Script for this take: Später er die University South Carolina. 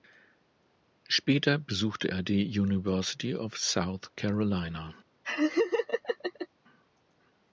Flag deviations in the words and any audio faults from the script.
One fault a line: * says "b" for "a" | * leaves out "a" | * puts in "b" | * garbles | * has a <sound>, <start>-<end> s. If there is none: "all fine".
* puts in "besuchte"
* puts in "of"
* has a laugh, 5.2-6.5 s